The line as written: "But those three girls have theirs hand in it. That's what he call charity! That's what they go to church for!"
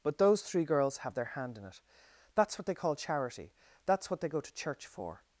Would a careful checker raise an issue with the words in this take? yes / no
yes